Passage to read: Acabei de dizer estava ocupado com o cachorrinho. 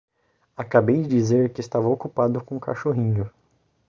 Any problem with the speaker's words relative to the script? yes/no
yes